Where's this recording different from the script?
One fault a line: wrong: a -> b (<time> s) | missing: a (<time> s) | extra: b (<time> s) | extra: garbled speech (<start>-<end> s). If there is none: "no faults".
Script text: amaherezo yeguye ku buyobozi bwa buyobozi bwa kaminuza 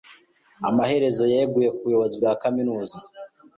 missing: buyobozi bwa (2.3 s)